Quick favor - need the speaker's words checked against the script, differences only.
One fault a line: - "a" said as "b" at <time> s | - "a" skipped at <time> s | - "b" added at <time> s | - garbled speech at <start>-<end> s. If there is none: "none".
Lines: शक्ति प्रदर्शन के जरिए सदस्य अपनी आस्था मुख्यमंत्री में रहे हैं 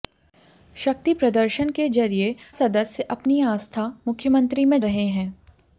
none